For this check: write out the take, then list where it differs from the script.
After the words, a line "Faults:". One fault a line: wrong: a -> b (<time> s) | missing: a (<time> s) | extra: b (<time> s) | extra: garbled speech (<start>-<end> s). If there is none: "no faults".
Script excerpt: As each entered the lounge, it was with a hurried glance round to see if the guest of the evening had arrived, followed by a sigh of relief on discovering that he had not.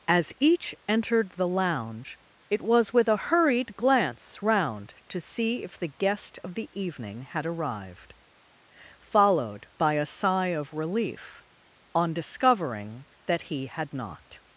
As each entered the lounge, it was with a hurried glance round to see if the guest of the evening had arrived, followed by a sigh of relief on discovering that he had not.
Faults:
no faults